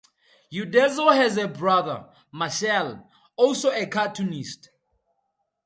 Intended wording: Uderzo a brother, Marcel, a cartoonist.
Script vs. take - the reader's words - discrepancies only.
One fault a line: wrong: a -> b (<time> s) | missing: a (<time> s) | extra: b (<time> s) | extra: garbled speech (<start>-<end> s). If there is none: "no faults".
extra: has (1.1 s)
extra: also (3.4 s)